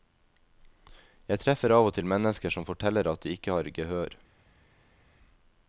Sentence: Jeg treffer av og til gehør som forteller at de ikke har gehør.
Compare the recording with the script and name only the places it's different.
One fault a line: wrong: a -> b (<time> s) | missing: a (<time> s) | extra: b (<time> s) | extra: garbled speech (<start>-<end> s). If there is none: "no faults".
wrong: gehør -> mennesker (2.1 s)